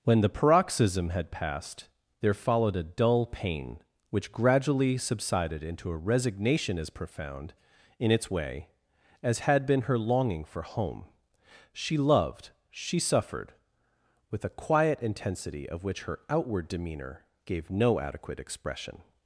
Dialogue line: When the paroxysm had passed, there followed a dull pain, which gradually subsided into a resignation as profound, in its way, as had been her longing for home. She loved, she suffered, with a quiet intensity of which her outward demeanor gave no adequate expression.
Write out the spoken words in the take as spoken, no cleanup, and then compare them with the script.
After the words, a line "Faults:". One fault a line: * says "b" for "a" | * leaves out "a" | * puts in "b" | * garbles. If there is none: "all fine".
When the paroxysm had passed, there followed a dull pain, which gradually subsided into a resignation as profound, in its way, as had been her longing for home. She loved, she suffered, with a quiet intensity of which her outward demeanor gave no adequate expression.
Faults:
all fine